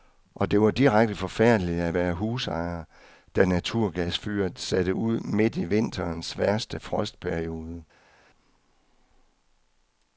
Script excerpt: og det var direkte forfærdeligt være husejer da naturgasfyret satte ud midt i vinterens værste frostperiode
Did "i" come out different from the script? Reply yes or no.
no